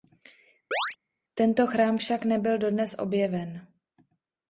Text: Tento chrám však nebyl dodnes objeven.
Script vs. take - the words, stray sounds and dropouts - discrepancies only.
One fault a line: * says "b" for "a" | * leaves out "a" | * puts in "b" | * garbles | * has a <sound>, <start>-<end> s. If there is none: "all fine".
* has a chirp, 0.7-1.0 s